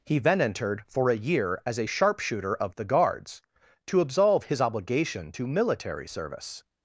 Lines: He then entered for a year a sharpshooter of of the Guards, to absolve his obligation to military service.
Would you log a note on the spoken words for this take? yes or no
yes